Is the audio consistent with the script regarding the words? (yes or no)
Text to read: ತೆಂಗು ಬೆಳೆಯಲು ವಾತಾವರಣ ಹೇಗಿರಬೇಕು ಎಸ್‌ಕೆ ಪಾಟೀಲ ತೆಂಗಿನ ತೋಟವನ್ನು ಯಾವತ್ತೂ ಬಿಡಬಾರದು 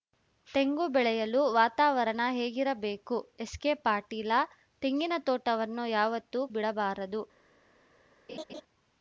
yes